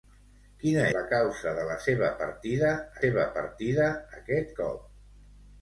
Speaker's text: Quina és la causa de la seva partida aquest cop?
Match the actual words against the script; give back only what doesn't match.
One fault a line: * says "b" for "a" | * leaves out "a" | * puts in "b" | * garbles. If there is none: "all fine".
* leaves out "és"
* puts in "seva partida"